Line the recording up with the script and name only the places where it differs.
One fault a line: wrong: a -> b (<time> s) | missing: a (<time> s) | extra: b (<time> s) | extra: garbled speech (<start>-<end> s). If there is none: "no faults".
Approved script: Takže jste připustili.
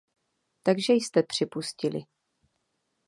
no faults